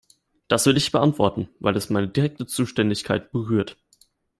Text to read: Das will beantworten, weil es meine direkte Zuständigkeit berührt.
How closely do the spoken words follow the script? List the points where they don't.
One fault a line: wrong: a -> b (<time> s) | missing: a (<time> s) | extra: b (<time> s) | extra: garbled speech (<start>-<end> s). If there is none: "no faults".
extra: ich (0.8 s)